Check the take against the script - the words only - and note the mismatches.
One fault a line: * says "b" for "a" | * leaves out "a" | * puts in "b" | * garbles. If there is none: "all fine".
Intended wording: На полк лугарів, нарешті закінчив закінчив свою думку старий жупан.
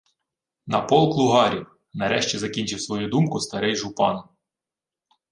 * leaves out "закінчив"